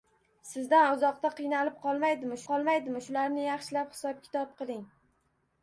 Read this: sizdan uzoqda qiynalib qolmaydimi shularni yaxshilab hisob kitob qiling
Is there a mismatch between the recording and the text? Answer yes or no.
yes